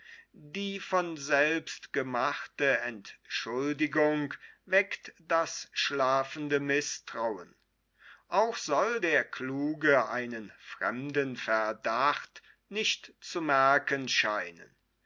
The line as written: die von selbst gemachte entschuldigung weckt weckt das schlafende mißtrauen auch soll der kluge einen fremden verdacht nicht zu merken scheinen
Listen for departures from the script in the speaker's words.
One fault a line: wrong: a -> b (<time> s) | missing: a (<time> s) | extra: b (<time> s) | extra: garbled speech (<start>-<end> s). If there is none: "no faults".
missing: weckt (5.1 s)